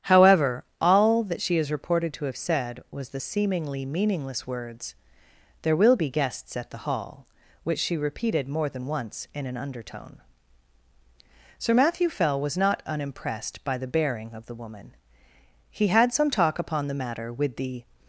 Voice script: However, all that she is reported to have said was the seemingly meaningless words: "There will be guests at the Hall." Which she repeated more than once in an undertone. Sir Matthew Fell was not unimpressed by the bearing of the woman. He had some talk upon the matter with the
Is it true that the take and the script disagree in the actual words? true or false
false